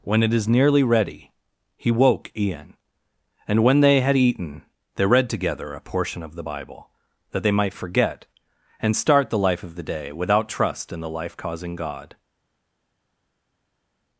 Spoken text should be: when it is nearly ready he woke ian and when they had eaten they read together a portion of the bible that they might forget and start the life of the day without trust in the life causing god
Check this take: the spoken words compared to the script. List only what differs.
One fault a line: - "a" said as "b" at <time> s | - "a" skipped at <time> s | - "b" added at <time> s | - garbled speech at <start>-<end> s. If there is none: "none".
none